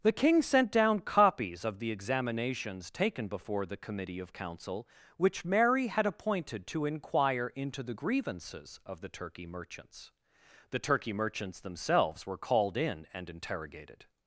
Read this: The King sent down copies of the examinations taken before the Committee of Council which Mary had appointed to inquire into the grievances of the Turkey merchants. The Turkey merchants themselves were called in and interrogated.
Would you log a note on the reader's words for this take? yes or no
no